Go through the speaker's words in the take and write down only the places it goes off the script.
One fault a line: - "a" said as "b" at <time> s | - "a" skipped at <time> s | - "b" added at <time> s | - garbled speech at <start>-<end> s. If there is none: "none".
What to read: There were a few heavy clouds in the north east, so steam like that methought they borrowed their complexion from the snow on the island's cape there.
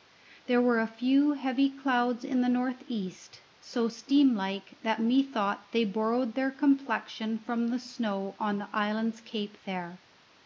none